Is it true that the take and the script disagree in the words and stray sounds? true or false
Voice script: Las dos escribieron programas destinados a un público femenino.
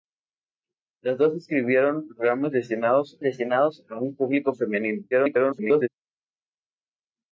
true